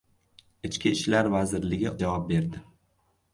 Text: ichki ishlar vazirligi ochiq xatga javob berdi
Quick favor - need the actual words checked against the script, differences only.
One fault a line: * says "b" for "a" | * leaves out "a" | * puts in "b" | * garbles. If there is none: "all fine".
* leaves out "ochiq xatga"